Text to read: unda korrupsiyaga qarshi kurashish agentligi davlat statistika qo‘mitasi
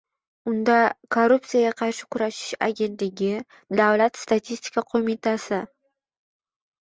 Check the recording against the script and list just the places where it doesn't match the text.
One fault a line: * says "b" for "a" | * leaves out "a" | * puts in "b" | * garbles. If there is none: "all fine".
all fine